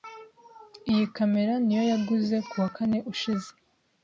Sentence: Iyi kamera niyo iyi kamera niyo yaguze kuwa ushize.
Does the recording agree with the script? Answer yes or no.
no